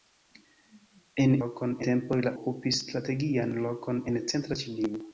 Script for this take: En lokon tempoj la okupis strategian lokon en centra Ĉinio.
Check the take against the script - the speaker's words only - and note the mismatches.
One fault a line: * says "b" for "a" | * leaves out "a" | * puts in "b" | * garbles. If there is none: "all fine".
all fine